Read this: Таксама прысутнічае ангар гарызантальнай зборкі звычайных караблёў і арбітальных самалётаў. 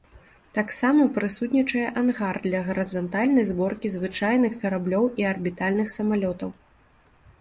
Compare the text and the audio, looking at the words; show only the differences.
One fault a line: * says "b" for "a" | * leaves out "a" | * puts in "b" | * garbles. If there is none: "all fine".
* puts in "для"